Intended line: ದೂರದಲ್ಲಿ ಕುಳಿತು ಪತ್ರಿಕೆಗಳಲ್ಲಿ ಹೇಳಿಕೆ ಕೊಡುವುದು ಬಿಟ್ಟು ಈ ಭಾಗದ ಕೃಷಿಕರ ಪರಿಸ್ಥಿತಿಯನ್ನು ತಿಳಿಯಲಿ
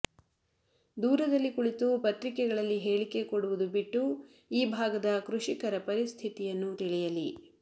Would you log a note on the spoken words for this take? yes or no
no